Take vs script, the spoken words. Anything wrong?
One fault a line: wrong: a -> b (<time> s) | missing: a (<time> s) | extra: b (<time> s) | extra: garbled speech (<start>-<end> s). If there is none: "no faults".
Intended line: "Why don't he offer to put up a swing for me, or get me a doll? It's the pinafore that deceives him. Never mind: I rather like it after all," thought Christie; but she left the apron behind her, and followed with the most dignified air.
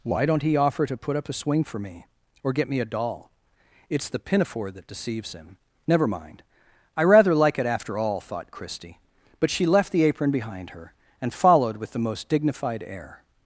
no faults